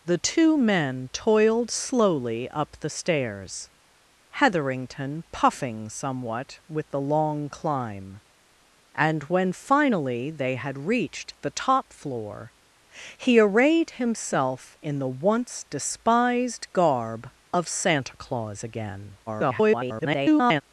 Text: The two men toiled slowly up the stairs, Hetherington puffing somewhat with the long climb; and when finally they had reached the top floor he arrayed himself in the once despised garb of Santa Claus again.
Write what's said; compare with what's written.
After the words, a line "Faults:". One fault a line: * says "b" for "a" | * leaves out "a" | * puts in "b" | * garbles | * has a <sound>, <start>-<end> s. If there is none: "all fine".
The two men toiled slowly up the stairs, Hetherington puffing somewhat with the long climb; and when finally they had reached the top floor he arrayed himself in the once despised garb of Santa Claus again. [garbled]
Faults:
* garbles